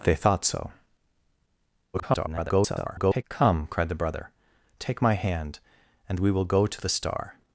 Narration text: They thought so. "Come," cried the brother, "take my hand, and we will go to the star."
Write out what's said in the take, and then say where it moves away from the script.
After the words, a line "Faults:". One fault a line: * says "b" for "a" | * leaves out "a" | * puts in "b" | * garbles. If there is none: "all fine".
They thought so. [garbled] "Come," cried the brother, "take my hand, and we will go to the star."
Faults:
* garbles